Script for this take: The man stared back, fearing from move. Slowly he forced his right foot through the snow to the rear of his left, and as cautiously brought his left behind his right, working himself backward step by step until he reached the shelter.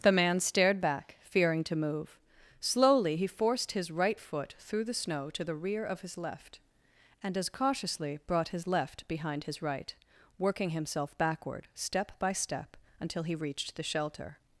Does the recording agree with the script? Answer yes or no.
no